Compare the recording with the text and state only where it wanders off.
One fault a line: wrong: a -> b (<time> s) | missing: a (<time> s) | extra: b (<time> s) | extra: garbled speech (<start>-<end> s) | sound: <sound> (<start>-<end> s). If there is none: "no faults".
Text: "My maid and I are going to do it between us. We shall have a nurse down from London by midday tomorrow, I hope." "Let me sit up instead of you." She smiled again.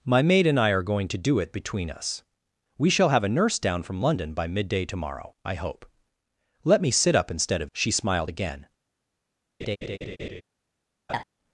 missing: you (7.7 s)
sound: laugh (9.6-10.4 s)
sound: laugh (11.1-11.2 s)